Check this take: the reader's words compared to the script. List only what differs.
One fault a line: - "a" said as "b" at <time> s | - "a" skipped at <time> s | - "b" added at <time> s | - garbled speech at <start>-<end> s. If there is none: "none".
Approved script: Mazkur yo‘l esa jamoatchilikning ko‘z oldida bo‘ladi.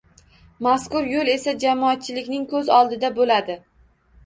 none